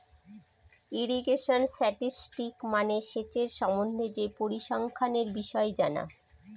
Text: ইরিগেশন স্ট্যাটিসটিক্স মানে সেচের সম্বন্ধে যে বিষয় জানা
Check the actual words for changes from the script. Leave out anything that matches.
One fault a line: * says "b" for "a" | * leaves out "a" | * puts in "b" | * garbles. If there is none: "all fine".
* puts in "পরিসংখ্যানের"